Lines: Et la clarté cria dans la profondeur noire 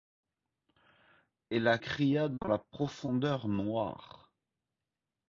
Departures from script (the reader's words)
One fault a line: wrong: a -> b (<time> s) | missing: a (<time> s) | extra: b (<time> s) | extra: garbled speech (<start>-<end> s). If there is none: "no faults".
missing: clarté (1.8 s)